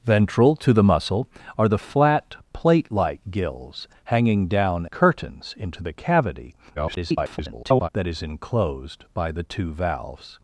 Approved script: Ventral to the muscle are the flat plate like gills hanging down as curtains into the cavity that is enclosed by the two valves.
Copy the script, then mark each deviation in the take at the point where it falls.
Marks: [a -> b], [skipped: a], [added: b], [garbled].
Ventral to the muscle are the flat plate like gills hanging down [skipped: as] curtains into the cavity [garbled] that is enclosed by the two valves.